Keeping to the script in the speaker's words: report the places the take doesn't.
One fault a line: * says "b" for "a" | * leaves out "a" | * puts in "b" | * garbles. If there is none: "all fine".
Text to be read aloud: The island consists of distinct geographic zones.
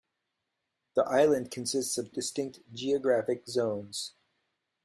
all fine